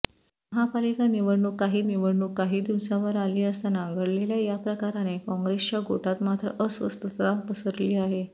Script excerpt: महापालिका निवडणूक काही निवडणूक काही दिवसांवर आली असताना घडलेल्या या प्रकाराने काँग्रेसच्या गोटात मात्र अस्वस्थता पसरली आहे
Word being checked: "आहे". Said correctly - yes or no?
yes